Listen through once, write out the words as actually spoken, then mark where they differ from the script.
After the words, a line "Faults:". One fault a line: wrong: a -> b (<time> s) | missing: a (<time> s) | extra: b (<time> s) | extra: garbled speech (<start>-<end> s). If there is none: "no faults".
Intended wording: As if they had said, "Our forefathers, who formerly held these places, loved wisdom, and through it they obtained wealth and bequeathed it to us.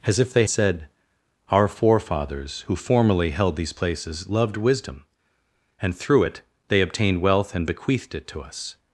As if they said, "Our forefathers, who formerly held these places, loved wisdom, and through it they obtained wealth and bequeathed it to us.
Faults:
missing: had (0.5 s)